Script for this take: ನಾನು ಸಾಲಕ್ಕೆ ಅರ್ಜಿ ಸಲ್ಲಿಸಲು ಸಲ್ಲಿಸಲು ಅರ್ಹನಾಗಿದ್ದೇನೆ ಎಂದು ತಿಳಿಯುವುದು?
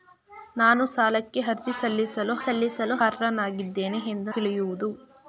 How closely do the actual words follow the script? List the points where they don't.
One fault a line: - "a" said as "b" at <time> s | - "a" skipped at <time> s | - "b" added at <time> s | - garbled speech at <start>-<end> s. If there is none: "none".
none